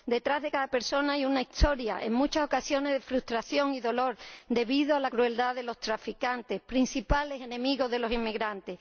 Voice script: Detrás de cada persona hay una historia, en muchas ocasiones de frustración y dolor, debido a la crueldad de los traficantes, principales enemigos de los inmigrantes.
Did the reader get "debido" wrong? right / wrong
right